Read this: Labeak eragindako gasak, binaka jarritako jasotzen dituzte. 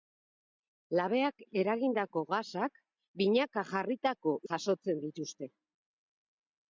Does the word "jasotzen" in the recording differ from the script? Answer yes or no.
no